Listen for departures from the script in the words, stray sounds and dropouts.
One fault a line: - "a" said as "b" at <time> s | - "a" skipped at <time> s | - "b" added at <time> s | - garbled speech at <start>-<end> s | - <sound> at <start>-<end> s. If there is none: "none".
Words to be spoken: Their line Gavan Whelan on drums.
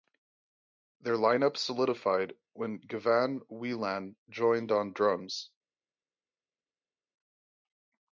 - "up solidified when" added at 1.4 s
- "joined" added at 4.3 s